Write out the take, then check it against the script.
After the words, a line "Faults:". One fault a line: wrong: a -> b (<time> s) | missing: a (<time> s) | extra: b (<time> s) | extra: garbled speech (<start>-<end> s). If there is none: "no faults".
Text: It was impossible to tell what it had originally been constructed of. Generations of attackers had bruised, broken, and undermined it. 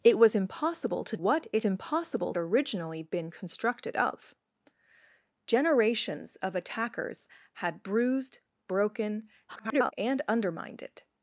It was impossible to what it impossible originally been constructed of. Generations of attackers had bruised, broken, [garbled] and undermined it.
Faults:
missing: tell (1.2 s)
wrong: had -> impossible (1.6 s)
extra: garbled speech (9.5-9.9 s)